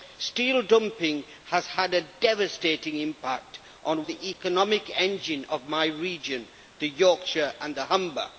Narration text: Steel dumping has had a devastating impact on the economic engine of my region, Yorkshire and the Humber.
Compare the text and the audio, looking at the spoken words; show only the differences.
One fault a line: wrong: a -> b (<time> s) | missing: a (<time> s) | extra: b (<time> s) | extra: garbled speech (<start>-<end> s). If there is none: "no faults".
no faults